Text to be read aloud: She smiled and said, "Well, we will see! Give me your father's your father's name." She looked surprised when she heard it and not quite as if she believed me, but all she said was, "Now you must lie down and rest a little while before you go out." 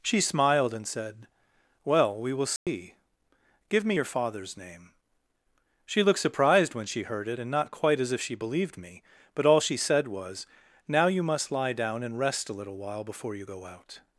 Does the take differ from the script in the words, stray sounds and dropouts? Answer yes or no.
yes